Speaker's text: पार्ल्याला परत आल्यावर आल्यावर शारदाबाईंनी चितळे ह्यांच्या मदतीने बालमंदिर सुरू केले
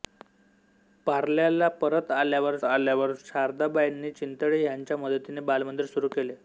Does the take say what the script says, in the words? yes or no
yes